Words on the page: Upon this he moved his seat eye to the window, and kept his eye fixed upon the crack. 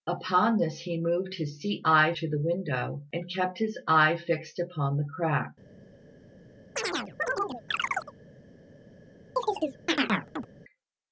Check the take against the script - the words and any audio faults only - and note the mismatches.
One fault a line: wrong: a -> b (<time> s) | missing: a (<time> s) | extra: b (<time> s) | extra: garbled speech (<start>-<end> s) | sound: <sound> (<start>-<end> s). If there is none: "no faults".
sound: chirp (6.8-8.1 s)
sound: chirp (9.4-10.5 s)